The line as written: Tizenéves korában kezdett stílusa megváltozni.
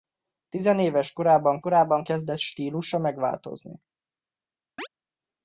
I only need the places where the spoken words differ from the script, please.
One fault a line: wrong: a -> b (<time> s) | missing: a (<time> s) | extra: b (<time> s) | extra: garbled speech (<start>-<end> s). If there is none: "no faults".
extra: korában (1.6 s)